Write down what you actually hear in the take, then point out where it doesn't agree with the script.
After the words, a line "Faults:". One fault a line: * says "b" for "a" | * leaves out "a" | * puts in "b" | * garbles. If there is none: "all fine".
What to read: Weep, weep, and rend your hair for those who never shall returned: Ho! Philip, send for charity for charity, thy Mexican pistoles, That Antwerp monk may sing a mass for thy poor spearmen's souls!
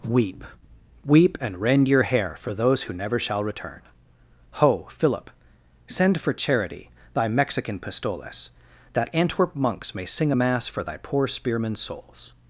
Weep, weep, and rend your hair for those who never shall return: Ho! Philip, send for charity, thy Mexican pistoles, That Antwerp monks may sing a mass for thy poor spearmen's souls!
Faults:
* says "return" for "returned"
* leaves out "for charity"
* says "monks" for "monk"